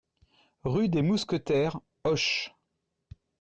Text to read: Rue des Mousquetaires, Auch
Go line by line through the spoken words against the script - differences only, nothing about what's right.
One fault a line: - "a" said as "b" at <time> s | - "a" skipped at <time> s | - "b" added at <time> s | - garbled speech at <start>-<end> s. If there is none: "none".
none